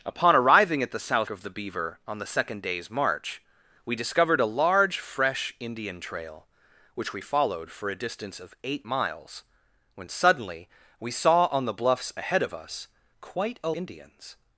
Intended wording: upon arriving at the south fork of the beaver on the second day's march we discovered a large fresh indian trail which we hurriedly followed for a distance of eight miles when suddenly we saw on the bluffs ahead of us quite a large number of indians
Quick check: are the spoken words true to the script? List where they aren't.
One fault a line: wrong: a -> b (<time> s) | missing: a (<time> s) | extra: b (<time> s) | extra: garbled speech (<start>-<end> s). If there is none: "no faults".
missing: fork (1.3 s)
missing: hurriedly (7.2 s)
missing: large number of (13.7 s)